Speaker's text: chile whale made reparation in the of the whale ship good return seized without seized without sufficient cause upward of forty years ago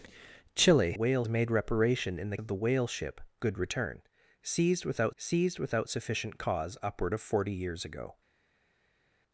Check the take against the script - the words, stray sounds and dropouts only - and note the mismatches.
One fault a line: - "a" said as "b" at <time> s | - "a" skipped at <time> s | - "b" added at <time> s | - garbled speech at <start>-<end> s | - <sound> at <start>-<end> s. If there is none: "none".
none